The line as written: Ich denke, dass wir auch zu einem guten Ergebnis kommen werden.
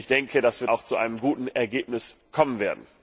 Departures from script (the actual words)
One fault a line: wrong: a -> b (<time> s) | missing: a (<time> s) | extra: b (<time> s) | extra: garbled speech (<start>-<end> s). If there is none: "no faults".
no faults